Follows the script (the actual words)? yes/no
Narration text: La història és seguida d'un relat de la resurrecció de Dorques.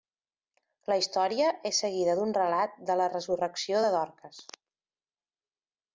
yes